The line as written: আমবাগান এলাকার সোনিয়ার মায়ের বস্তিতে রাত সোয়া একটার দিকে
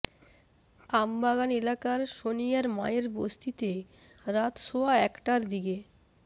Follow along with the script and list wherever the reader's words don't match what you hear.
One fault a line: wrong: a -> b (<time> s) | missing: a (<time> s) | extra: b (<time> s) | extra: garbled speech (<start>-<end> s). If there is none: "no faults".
no faults